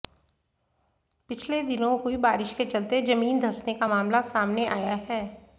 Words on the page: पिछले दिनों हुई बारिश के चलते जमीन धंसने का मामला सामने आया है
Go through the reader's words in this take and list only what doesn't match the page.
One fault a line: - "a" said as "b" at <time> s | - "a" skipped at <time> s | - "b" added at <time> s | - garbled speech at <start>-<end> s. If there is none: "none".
none